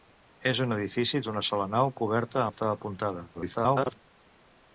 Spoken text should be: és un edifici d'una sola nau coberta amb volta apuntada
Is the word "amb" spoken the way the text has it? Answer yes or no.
no